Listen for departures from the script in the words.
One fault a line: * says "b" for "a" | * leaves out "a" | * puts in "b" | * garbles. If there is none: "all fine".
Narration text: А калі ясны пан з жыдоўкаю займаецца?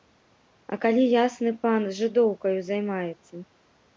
all fine